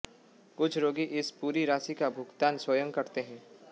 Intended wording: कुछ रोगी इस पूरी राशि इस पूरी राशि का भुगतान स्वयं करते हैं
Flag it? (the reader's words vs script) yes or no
yes